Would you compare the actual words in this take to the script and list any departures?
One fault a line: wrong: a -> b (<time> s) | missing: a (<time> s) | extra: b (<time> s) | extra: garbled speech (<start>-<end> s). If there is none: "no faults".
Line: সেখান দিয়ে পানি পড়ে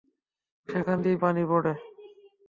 no faults